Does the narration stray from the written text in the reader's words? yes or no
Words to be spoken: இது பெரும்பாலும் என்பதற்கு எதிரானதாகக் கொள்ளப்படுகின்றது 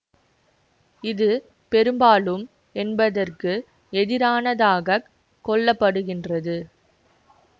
no